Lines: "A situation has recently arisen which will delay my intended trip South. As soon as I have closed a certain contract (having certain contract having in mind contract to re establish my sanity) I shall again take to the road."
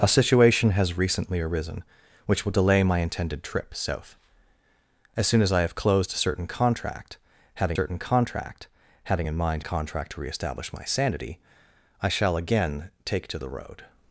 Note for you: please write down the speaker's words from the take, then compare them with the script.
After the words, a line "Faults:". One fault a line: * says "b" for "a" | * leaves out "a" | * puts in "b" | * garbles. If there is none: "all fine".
"A situation has recently arisen which will delay my intended trip South. As soon as I have closed a certain contract (having certain contract having in mind contract to re establish my sanity) I shall again take to the road."
Faults:
all fine